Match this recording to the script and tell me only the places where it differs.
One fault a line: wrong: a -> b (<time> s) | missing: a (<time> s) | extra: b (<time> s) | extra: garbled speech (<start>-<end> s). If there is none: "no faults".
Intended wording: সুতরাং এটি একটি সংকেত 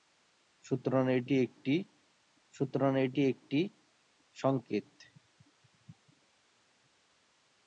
extra: সুতরাং এটি একটি (2.5 s)